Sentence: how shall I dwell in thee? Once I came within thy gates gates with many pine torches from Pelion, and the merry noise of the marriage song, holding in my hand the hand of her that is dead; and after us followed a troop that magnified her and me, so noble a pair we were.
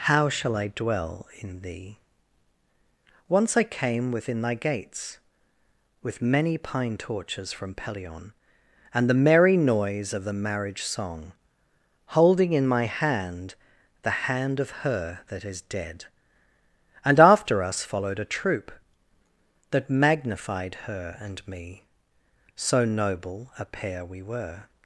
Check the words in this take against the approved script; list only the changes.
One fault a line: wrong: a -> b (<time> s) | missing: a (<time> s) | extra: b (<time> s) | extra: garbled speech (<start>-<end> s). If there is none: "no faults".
missing: gates (5.2 s)